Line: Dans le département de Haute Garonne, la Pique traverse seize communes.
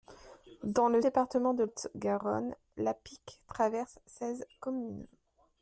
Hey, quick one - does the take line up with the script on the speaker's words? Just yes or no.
yes